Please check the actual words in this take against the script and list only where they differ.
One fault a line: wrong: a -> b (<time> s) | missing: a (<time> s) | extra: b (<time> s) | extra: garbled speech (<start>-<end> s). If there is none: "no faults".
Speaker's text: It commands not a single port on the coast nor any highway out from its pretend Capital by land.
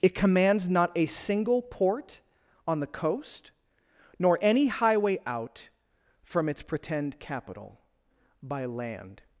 no faults